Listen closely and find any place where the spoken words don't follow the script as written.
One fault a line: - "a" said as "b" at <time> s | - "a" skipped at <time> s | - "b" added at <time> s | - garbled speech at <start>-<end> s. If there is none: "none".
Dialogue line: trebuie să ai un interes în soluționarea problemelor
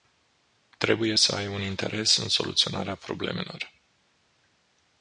none